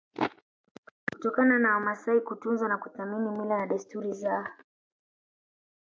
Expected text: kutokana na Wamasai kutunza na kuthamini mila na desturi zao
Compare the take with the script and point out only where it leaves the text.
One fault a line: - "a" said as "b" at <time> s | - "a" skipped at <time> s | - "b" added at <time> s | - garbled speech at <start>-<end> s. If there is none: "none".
none